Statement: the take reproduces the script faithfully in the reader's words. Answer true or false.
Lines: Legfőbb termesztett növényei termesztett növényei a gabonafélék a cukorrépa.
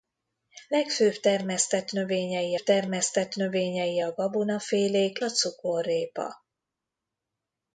true